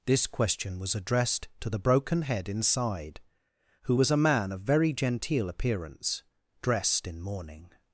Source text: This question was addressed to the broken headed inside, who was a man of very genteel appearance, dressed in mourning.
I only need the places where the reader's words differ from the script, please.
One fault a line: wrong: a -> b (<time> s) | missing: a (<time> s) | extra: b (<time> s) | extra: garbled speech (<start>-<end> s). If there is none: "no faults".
wrong: headed -> head (2.2 s)